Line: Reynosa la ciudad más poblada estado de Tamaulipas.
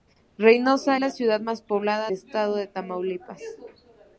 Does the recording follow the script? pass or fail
pass